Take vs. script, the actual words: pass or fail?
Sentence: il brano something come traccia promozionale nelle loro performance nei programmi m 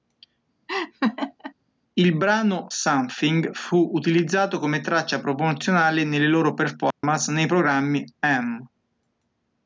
fail